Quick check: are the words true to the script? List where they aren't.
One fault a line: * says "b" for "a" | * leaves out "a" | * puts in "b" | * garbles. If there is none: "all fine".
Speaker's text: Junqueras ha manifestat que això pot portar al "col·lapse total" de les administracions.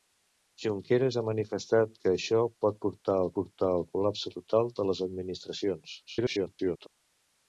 * puts in "portar al"
* garbles